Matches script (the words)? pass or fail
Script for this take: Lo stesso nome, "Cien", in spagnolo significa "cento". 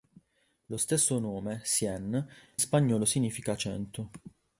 fail